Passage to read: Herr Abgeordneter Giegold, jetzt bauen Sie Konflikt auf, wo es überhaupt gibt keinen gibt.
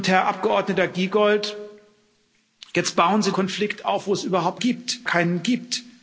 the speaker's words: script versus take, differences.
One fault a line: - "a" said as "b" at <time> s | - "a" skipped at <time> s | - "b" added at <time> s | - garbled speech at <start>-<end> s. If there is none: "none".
none